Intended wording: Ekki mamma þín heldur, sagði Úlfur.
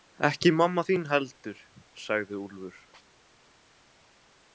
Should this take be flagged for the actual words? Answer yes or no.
no